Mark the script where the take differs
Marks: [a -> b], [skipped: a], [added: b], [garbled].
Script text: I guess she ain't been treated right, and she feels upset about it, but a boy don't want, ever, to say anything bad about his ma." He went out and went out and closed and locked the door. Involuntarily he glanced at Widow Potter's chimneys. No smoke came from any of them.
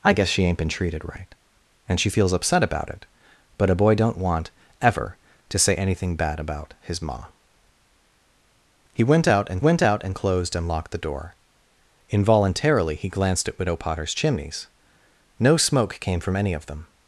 I guess she ain't been treated right, and she feels upset about it, but a boy don't want, ever, to say anything bad about his ma." He went out and went out and closed and locked the door. Involuntarily he glanced at Widow Potter's chimneys. No smoke came from any of them.